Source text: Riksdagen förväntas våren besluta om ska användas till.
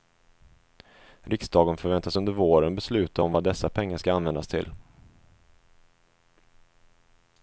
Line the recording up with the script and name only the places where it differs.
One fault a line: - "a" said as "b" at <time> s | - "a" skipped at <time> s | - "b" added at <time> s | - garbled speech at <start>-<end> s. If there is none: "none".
- "under" added at 2.2 s
- "vad dessa pengar" added at 3.3 s